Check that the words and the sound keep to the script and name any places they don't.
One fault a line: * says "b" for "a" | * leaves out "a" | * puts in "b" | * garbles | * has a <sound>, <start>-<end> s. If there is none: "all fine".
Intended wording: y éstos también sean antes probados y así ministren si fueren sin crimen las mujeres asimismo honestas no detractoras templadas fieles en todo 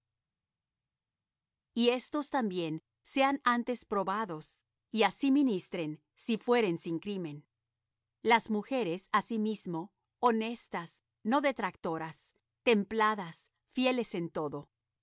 all fine